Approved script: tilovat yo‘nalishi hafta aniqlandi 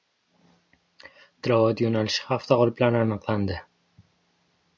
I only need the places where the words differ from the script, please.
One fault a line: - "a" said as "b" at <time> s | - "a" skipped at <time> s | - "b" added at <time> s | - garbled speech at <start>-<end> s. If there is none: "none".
- "g‘oliblari" added at 2.6 s